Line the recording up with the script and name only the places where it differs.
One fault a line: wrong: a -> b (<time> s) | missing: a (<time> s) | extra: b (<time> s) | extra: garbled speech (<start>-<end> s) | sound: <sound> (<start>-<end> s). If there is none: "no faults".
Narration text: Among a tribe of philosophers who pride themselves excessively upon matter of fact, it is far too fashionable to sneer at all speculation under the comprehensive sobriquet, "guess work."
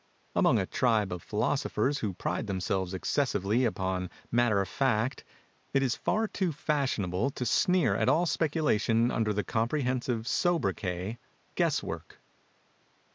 no faults